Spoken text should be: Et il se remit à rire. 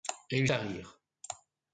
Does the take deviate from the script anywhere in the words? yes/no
yes